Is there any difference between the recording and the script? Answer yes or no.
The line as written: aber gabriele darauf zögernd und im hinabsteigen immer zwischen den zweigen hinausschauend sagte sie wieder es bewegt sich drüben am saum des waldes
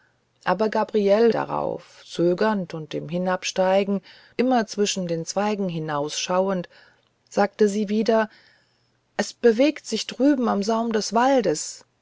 no